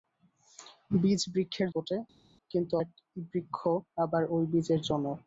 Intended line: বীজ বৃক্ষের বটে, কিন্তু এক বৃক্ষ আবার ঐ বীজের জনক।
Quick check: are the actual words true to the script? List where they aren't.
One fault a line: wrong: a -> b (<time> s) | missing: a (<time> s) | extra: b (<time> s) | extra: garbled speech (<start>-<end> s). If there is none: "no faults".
no faults